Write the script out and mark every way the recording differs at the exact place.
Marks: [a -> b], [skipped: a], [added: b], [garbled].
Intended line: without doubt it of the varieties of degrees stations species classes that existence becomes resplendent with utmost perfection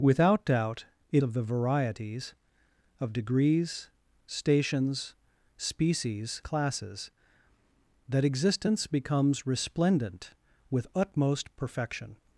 without doubt it of the varieties of degrees stations species classes that existence becomes resplendent with utmost perfection